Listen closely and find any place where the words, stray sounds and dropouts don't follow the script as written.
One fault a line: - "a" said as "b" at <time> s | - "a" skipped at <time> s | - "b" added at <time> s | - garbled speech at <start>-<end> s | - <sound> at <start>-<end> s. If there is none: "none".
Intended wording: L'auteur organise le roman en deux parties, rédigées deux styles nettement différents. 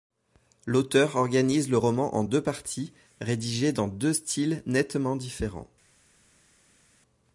- "dans" added at 3.7 s